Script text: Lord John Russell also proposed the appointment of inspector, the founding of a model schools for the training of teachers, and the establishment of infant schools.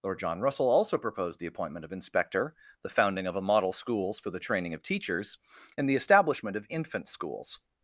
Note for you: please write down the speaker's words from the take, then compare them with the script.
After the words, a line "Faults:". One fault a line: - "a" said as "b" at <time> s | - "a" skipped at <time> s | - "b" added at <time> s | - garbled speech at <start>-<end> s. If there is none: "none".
Lord John Russell also proposed the appointment of inspector, the founding of a model schools for the training of teachers, and the establishment of infant schools.
Faults:
none